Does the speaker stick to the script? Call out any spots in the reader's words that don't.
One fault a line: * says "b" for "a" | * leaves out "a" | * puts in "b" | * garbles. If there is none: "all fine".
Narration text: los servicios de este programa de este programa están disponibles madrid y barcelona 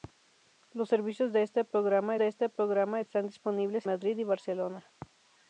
all fine